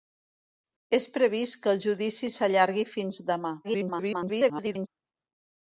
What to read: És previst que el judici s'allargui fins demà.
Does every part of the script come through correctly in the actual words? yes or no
no